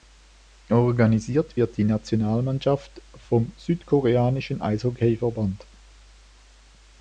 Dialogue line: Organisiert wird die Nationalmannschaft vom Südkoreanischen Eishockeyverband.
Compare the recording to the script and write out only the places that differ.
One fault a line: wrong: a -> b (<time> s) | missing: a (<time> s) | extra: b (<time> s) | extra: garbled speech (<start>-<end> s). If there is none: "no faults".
no faults